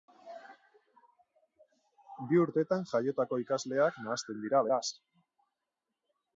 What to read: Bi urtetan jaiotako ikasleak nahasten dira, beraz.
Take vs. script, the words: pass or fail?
pass